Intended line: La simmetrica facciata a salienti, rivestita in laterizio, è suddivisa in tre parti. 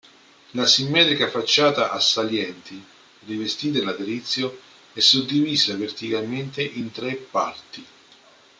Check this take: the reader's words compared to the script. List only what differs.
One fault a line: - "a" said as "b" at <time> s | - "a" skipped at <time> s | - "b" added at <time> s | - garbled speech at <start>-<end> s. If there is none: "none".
- "verticalmente" added at 5.7 s